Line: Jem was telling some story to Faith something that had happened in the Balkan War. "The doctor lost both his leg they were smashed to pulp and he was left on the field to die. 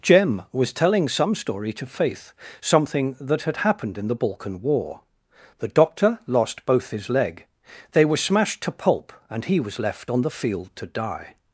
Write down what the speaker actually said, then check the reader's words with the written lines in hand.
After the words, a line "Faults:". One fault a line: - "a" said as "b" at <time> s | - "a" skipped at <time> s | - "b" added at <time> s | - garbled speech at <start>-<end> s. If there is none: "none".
Jem was telling some story to Faith something that had happened in the Balkan War. "The doctor lost both his leg they were smashed to pulp and he was left on the field to die.
Faults:
none